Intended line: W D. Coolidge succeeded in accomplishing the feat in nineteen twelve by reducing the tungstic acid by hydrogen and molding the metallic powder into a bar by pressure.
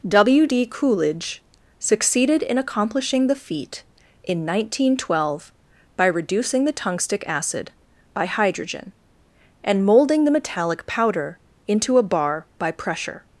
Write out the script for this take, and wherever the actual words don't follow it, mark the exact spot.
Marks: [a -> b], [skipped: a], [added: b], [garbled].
W D. Coolidge succeeded in accomplishing the feat in nineteen twelve by reducing the tungstic acid by hydrogen and molding the metallic powder into a bar by pressure.